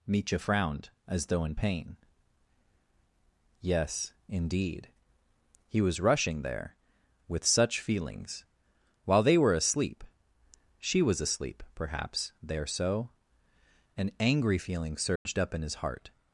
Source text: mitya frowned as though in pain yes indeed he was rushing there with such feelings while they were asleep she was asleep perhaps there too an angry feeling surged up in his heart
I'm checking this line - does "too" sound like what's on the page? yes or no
no